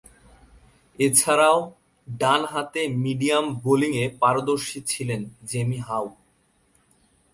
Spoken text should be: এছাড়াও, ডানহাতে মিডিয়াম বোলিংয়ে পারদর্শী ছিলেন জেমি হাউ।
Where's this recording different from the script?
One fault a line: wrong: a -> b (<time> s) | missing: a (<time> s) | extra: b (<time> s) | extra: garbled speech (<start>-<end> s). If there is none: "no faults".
no faults